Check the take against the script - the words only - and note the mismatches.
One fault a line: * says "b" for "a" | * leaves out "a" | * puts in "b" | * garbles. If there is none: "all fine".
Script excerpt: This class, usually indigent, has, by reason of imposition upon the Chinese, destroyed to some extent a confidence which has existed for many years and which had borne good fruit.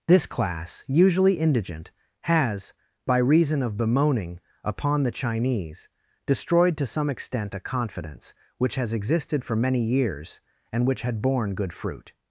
* says "bemoaning" for "imposition"